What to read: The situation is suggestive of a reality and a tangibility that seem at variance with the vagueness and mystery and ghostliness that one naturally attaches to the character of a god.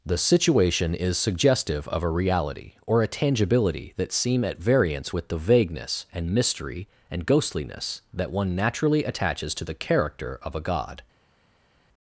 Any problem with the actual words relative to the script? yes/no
yes